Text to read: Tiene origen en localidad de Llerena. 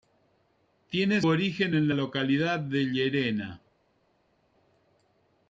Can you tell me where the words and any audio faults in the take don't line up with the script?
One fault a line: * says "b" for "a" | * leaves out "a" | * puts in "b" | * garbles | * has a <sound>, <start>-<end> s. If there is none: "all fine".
all fine